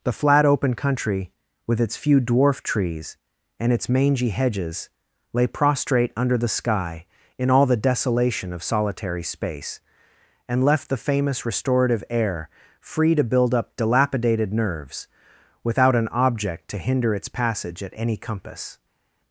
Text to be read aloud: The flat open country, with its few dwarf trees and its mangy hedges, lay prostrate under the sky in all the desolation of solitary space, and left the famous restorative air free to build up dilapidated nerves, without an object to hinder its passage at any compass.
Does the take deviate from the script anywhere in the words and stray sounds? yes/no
no